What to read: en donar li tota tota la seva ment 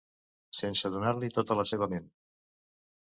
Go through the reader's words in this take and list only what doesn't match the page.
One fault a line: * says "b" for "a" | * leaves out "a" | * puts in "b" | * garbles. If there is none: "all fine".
* says "sense" for "en"
* leaves out "tota"